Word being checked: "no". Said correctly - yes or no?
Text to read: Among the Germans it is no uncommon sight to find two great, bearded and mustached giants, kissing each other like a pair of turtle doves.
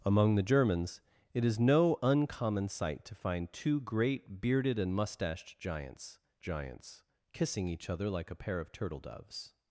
yes